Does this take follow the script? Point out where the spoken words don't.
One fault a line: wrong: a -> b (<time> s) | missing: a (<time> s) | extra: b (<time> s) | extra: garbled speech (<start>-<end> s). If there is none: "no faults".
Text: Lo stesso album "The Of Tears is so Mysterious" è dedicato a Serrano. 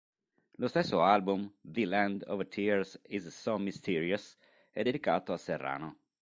extra: Land (1.9 s)